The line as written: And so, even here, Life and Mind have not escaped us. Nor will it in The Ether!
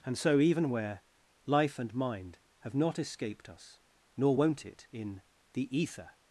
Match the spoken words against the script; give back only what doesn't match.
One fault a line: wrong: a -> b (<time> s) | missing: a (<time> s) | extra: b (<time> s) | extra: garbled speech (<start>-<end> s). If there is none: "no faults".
wrong: here -> where (0.7 s)
wrong: will -> won't (4.4 s)